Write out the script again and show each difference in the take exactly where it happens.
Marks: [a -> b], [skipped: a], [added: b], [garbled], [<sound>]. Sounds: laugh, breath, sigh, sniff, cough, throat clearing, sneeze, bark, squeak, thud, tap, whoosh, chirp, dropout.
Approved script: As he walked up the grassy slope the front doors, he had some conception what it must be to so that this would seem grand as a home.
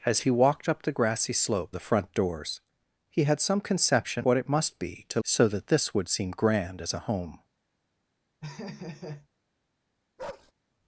As he walked up the grassy slope the front doors, he had some conception what it must be to so that this would seem grand as a home. [laugh] [bark]